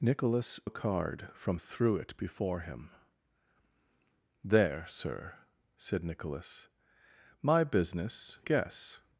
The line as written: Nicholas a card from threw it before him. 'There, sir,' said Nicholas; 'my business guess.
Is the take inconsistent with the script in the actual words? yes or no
no